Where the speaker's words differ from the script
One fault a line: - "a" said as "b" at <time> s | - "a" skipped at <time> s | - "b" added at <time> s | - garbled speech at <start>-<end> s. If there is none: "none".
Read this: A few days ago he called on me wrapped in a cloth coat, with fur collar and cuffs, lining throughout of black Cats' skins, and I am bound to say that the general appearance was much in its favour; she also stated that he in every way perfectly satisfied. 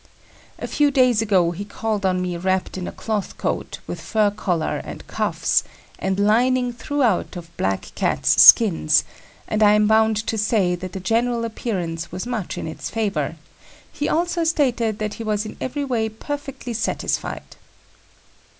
- "and" added at 6.0 s
- "she" said as "he" at 13.9 s
- "was" added at 15.2 s